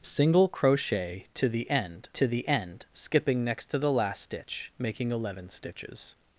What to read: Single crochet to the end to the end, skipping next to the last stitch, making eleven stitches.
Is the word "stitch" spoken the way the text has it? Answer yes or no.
yes